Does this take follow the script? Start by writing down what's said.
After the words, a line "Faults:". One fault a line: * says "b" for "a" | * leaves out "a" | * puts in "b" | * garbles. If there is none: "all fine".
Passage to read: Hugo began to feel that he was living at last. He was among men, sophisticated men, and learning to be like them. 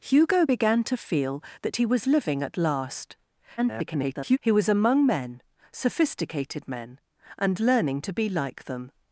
Hugo began to feel that he was living at last. [garbled] He was among men, sophisticated men, and learning to be like them.
Faults:
* garbles